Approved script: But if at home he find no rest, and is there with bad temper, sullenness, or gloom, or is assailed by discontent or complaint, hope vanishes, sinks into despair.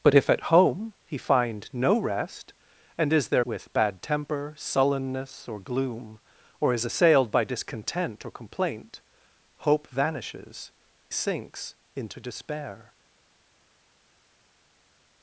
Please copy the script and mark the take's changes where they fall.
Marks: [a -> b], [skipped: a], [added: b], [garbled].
But if at home he find no rest, and is there with bad temper, sullenness, or gloom, or is assailed by discontent or complaint, hope vanishes, sinks into despair.